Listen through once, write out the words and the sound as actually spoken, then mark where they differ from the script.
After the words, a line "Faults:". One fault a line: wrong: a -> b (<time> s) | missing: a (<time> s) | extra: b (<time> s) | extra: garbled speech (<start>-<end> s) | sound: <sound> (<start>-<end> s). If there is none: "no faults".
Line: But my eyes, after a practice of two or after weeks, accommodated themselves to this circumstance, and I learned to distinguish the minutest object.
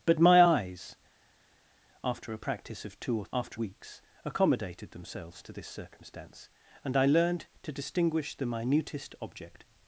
But my eyes, after a practice of two or after weeks, accommodated themselves to this circumstance, and I learned to distinguish the minutest object.
Faults:
no faults